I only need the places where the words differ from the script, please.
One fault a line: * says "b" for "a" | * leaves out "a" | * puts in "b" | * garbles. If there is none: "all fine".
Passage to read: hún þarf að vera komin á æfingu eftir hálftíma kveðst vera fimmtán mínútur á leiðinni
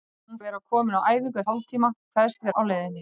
* leaves out "þarf"
* leaves out "eftir"
* leaves out "vera fimmtán mínútur"